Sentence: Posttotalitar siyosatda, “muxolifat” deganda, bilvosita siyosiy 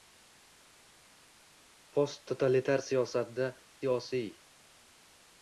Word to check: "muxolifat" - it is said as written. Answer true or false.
false